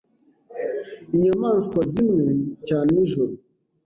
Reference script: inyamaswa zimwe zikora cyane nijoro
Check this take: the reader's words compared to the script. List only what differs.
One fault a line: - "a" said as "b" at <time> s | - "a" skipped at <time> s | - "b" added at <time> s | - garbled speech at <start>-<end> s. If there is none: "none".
- "zikora" skipped at 2.2 s